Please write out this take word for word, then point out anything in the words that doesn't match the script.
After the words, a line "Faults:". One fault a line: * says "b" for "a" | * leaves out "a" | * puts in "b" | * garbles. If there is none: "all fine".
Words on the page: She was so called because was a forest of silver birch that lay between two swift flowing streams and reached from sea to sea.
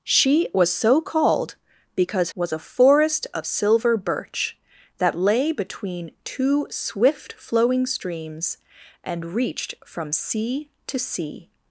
She was so called because was a forest of silver birch that lay between two swift flowing streams and reached from sea to sea.
Faults:
all fine